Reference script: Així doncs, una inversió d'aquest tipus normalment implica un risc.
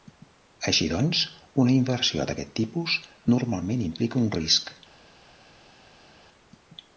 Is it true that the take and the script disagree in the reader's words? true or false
false